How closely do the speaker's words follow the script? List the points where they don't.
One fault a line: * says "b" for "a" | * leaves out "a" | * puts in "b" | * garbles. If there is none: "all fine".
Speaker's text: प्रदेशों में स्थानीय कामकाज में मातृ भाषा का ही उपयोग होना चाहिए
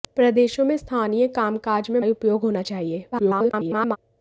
* leaves out "मातृ भाषा का"
* garbles